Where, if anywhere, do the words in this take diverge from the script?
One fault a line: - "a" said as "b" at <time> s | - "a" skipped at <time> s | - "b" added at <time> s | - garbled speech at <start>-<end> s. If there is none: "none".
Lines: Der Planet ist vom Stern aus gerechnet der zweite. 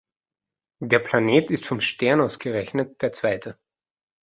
none